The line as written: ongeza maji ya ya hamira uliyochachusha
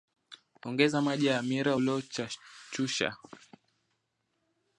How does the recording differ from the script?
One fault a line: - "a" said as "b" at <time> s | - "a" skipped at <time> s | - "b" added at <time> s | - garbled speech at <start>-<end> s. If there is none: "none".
- "ya" skipped at 1.4 s